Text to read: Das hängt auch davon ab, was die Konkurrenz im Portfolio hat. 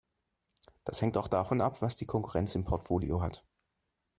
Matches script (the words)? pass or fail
pass